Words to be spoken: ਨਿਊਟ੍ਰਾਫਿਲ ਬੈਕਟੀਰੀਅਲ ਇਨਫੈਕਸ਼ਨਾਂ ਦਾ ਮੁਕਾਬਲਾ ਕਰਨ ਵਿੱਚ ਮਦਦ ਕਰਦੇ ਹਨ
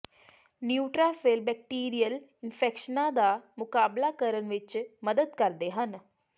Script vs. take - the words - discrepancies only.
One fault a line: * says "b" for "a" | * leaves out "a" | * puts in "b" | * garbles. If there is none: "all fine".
all fine